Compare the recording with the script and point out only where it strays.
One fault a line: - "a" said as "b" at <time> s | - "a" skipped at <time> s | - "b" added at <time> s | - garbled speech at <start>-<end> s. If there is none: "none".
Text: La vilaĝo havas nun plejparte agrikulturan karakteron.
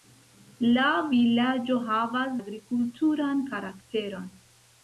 - "nun plejparte" skipped at 2.3 s